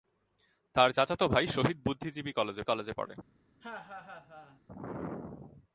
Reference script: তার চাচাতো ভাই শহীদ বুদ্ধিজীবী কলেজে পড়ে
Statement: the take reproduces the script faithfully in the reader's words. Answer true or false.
false